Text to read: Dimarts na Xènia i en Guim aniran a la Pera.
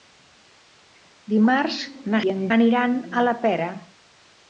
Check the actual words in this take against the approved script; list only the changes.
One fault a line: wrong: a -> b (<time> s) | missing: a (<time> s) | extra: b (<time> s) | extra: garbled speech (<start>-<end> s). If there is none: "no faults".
missing: Xènia (2.2 s)
missing: Guim (2.4 s)